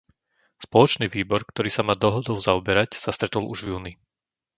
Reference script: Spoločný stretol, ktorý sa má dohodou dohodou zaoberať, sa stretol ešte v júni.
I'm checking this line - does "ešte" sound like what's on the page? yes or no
no